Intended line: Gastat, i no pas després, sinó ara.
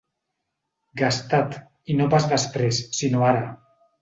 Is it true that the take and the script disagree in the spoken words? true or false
false